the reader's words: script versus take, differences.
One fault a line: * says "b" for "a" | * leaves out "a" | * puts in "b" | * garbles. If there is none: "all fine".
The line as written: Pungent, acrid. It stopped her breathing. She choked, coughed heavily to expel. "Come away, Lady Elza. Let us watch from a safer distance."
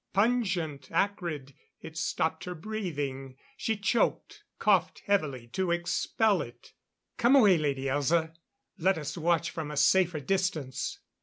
* puts in "it"